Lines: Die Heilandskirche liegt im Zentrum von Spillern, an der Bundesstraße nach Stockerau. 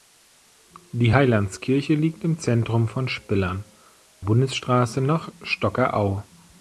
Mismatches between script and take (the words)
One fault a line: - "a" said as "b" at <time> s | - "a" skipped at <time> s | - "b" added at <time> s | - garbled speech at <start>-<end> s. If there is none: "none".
- "an der" skipped at 3.6 s